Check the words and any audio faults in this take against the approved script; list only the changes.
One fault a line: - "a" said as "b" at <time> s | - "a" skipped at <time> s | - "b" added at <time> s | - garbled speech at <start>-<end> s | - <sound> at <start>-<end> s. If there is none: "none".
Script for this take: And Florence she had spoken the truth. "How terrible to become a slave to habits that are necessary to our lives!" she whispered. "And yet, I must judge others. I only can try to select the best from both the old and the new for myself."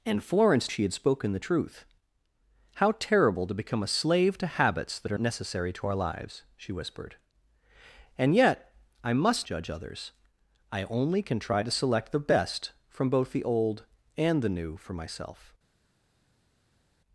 none